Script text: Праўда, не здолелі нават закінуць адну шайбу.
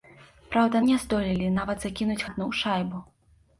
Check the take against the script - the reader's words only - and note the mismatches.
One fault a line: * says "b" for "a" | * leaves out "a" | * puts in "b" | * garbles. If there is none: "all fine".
all fine